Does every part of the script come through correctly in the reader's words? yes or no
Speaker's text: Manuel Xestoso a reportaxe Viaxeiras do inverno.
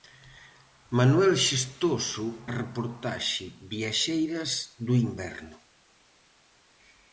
yes